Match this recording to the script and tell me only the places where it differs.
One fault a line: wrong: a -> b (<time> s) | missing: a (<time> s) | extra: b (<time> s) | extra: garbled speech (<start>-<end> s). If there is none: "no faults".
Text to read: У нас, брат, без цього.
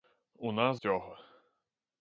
missing: брат без (0.8 s)